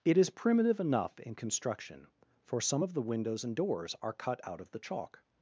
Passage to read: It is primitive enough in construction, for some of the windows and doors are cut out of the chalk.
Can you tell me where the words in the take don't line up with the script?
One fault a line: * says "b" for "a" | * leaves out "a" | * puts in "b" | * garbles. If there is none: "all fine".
all fine